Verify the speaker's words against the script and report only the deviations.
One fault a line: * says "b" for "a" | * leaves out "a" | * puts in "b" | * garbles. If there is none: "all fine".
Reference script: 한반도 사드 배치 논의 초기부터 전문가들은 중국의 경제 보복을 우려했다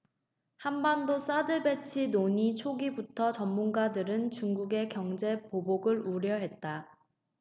all fine